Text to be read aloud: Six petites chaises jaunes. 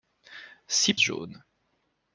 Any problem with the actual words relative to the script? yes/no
yes